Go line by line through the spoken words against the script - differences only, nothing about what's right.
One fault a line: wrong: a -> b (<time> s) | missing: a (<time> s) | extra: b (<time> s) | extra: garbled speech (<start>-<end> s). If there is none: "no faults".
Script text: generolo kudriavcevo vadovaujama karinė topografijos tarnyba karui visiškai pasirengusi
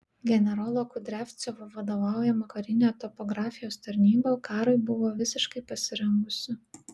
extra: buvo (4.9 s)